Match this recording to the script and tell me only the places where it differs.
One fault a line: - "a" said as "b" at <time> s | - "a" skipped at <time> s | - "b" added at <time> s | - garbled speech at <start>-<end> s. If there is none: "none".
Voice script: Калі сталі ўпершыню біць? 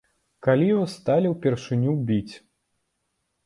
- "вас" added at 0.8 s